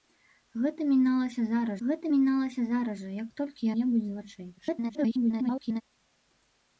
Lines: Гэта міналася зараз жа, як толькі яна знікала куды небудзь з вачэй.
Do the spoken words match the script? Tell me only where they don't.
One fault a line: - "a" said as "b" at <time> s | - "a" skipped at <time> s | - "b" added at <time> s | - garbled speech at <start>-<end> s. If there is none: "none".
- "гэта міналася зараз" added at 1.9 s
- "яна знікала куды" skipped at 3.7 s
- garbled speech at 4.6-5.8 s